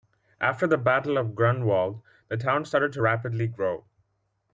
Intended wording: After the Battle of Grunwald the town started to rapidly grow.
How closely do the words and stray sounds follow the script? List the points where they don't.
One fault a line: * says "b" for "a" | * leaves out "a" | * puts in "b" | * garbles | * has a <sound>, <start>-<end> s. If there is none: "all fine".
all fine